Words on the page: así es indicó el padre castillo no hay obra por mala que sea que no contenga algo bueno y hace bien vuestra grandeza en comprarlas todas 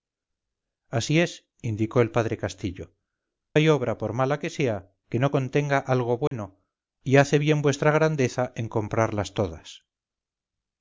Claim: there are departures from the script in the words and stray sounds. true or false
true